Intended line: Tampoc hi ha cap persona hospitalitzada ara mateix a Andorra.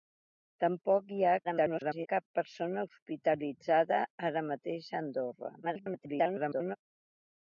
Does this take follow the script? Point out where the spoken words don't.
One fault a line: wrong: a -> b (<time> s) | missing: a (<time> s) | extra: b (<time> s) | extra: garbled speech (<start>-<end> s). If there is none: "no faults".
extra: garbled speech (1.4-2.1 s)
extra: garbled speech (5.6-6.8 s)